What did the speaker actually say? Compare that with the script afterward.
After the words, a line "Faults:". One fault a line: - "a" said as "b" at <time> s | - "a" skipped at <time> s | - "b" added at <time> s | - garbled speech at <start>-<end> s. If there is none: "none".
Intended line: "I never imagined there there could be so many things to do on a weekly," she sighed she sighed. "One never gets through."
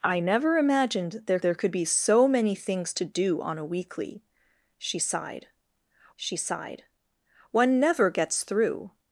"I never imagined there there could be so many things to do on a weekly," she sighed she sighed. "One never gets through."
Faults:
none